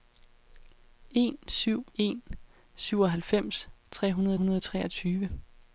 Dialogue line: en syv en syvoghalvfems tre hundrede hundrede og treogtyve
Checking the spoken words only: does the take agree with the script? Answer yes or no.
yes